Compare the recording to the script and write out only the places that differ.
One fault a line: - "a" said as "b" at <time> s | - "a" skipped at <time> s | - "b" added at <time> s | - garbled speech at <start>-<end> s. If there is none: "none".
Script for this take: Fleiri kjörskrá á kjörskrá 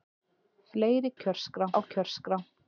none